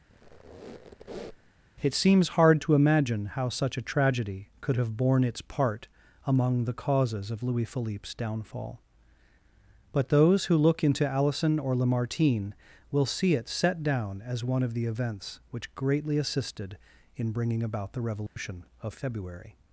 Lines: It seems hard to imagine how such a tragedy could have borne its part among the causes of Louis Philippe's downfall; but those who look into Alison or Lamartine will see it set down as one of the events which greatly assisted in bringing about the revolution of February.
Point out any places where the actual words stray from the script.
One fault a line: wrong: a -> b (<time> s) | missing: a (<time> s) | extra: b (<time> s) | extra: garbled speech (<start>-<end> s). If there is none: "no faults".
no faults